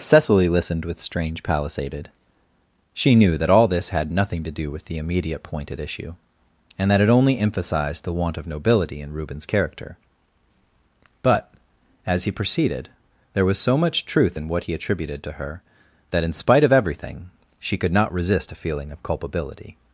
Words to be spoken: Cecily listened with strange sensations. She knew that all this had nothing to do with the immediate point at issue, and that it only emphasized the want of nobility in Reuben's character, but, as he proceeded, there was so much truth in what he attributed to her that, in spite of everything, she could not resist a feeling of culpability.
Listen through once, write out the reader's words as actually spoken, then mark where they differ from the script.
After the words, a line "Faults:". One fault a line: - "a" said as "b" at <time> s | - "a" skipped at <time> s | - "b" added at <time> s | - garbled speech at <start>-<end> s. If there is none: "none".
Cecily listened with strange palisaded. She knew that all this had nothing to do with the immediate point at issue, and that it only emphasized the want of nobility in Reuben's character, but, as he proceeded, there was so much truth in what he attributed to her that, in spite of everything, she could not resist a feeling of culpability.
Faults:
- "sensations" said as "palisaded" at 1.4 s